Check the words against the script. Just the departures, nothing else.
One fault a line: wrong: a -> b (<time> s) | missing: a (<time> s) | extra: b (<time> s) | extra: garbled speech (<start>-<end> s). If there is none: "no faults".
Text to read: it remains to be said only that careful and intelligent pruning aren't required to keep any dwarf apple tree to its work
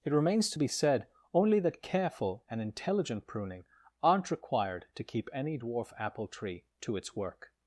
no faults